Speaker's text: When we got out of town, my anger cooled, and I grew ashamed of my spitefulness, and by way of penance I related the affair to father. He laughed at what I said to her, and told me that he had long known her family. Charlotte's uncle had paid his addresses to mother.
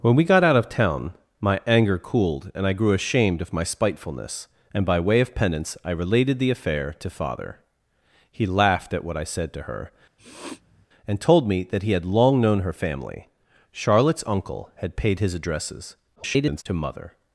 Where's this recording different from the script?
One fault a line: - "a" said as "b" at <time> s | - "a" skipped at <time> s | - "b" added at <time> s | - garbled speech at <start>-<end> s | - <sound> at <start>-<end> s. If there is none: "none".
- sniff at 10.2-10.9 s
- garbled speech at 16.2-16.6 s